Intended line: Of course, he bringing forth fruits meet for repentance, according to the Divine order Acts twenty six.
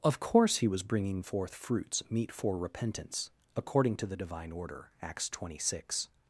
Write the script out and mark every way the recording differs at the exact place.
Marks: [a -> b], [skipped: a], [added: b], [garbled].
Of course, he [added: was] bringing forth fruits meet for repentance, according to the Divine order Acts twenty six.